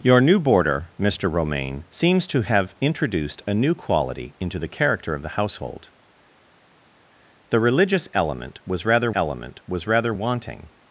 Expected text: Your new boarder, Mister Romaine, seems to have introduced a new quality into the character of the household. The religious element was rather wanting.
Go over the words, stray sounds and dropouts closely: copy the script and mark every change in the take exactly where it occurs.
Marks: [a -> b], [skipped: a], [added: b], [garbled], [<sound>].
Your new boarder, Mister Romaine, seems to have introduced a new quality into the character of the household. The religious element was rather [added: element was rather] wanting.